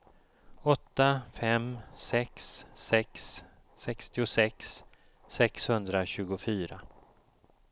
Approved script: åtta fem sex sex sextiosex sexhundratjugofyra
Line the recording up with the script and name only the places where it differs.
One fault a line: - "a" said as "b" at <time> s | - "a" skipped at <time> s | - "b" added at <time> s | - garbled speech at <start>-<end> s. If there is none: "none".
none